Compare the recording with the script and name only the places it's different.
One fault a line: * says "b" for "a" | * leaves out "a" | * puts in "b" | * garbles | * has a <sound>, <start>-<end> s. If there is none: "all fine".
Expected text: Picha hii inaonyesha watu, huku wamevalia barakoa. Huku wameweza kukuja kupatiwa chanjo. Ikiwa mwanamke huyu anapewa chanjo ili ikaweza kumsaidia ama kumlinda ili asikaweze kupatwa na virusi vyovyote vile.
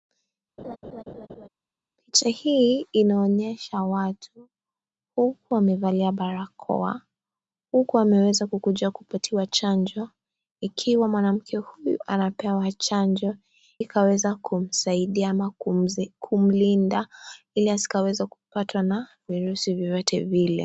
* has a laugh, 0.6-1.5 s
* leaves out "ili"